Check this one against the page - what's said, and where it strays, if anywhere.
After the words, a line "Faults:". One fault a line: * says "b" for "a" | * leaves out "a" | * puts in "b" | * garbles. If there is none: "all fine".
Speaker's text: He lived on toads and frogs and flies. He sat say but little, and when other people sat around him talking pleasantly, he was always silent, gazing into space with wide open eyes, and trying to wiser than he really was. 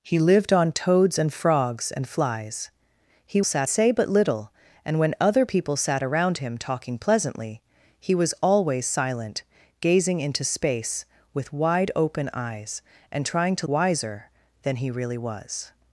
He lived on toads and frogs and flies. He sat say but little, and when other people sat around him talking pleasantly, he was always silent, gazing into space with wide open eyes, and trying to wiser than he really was.
Faults:
all fine